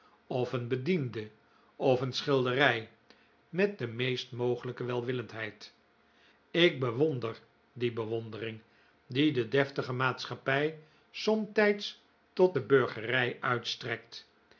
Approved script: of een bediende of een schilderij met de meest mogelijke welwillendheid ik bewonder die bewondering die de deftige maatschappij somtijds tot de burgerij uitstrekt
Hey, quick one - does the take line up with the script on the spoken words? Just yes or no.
yes